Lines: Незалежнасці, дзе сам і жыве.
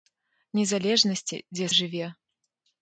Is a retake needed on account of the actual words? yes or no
yes